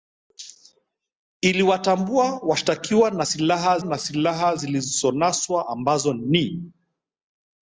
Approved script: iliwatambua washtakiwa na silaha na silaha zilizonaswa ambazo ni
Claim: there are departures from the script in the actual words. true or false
false